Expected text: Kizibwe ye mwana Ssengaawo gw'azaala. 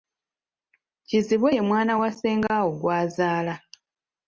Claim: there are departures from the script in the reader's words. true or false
true